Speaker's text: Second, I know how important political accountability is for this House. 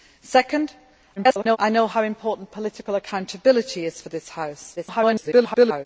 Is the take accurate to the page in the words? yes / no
no